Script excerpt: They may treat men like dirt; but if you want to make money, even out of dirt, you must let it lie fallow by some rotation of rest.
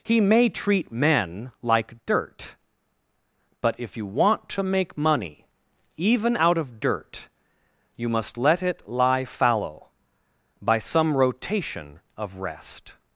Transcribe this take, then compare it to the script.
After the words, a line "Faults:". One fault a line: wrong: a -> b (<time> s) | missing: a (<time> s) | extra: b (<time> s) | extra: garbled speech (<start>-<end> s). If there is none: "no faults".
He may treat men like dirt; but if you want to make money, even out of dirt, you must let it lie fallow by some rotation of rest.
Faults:
wrong: They -> He (0.0 s)